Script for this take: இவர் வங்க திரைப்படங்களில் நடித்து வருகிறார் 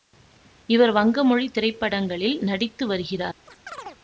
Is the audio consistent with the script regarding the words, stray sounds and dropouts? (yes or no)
no